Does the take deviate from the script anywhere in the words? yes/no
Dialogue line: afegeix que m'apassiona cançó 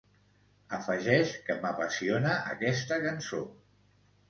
yes